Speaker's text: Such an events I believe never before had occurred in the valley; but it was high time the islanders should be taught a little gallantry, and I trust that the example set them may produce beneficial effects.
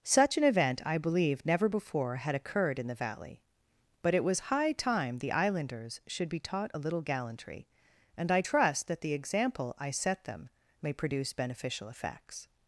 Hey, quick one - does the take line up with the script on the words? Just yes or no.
no